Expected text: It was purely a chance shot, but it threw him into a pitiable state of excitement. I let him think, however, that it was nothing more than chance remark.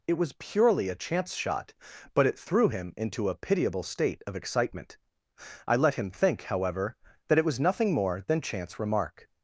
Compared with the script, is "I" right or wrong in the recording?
right